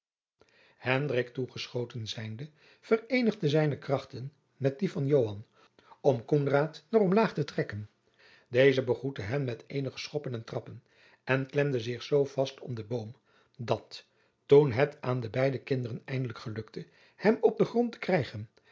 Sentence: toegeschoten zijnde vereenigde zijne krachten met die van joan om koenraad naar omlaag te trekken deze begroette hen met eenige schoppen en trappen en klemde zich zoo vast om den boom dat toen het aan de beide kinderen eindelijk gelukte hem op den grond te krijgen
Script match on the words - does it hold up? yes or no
yes